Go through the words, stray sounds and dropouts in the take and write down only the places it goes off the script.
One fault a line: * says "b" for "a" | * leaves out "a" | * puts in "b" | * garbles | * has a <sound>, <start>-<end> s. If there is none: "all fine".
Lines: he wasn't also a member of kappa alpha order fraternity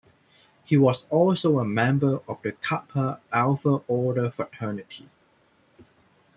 * says "was" for "wasn't"
* puts in "the"